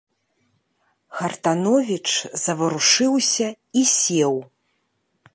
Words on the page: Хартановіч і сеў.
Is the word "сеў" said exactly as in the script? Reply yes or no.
yes